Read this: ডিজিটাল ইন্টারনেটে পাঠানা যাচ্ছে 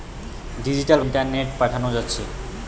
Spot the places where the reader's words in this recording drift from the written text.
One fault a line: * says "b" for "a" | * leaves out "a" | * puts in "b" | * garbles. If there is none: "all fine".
all fine